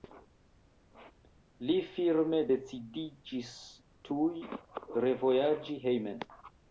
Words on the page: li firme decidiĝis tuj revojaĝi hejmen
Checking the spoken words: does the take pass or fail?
pass